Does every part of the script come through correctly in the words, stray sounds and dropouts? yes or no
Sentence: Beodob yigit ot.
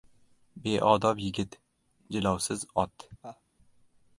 no